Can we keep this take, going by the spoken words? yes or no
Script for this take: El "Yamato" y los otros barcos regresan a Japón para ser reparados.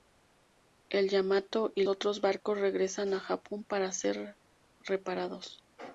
no